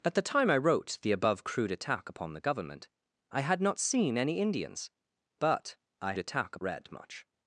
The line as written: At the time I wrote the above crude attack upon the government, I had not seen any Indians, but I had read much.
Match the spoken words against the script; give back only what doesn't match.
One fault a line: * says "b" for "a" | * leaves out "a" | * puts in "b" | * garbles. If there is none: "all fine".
* says "attack" for "had"